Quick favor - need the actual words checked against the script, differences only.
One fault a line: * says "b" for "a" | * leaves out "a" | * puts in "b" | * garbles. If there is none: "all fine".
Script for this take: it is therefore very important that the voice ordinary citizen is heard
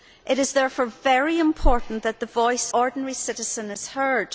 all fine